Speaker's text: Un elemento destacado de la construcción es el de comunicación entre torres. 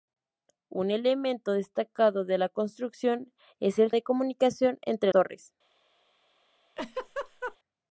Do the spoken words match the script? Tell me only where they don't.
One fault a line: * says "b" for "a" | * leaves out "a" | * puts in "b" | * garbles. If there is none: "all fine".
all fine